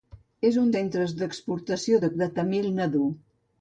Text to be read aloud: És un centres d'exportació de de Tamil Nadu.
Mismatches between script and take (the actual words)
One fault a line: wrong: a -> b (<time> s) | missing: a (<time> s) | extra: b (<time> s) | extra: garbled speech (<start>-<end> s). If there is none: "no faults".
no faults